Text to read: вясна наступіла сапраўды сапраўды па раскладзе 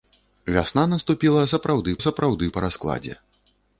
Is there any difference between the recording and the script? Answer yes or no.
no